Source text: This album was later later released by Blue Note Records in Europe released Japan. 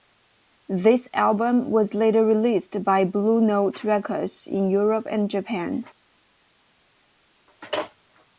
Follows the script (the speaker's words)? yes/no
no